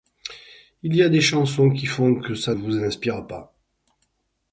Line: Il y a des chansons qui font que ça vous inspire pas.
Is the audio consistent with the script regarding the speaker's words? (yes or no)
yes